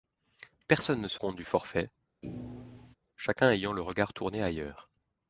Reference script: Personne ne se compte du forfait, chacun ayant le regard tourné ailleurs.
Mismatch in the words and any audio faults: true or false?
true